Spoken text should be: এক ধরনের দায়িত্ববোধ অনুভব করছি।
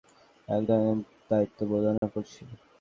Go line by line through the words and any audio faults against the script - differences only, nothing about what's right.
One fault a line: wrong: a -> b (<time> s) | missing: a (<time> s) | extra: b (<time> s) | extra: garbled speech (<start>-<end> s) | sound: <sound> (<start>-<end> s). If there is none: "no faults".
sound: dropout (2.0-2.0 s)